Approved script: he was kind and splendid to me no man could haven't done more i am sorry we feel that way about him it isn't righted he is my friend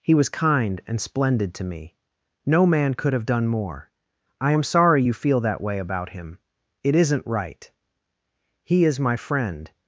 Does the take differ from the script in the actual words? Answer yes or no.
yes